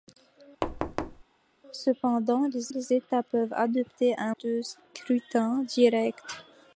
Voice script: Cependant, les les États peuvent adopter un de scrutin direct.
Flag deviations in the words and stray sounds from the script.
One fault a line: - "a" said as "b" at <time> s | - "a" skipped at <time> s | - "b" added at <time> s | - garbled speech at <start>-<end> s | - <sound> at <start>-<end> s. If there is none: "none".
- thud at 0.6-1.2 s